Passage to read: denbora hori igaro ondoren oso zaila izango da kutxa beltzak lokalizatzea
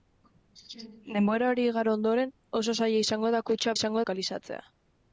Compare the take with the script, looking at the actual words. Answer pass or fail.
fail